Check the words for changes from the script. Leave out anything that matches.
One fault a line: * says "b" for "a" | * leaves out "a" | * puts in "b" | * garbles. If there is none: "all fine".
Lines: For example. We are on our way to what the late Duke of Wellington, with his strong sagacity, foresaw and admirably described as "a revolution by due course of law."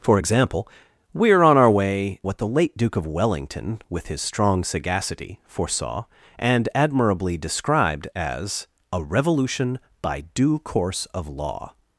* leaves out "to"